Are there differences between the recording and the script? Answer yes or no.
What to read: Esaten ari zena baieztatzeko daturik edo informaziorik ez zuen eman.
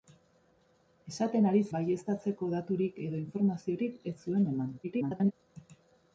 yes